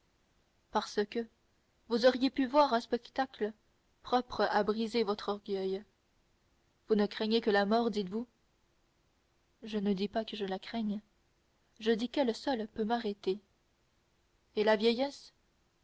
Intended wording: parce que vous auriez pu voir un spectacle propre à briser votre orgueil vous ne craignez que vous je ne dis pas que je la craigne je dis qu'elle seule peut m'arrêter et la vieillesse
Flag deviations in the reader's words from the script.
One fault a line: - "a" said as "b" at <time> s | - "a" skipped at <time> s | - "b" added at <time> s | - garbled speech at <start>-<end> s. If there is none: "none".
- "la mort dites" added at 7.5 s